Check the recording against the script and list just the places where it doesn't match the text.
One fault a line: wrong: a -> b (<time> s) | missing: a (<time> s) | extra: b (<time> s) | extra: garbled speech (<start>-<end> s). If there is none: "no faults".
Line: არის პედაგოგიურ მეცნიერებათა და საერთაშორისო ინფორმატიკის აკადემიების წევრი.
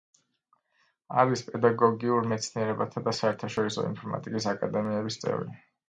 no faults